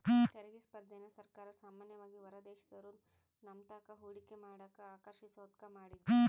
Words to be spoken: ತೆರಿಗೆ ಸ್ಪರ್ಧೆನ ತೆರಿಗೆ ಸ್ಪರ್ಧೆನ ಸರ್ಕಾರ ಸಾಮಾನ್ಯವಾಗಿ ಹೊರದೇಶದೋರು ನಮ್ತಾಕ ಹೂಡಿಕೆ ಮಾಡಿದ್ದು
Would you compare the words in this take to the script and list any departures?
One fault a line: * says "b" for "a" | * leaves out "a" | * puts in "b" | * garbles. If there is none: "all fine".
* leaves out "ತೆರಿಗೆ ಸ್ಪರ್ಧೆನ"
* puts in "ಮಾಡಕ ಆಕರ್ಷಿಸೋದ್ಕ"